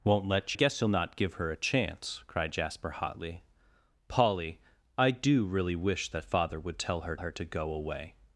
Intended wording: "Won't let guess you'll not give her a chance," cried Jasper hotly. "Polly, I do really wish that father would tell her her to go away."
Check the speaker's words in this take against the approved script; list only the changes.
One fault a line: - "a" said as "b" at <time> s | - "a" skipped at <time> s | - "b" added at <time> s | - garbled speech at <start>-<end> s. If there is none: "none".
none